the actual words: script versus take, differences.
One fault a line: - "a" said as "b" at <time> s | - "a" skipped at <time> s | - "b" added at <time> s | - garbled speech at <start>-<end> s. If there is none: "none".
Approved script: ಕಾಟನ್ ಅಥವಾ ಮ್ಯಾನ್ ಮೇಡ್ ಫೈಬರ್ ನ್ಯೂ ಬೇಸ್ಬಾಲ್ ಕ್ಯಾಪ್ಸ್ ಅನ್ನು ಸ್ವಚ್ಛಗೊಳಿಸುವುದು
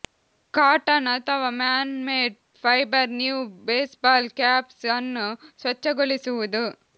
none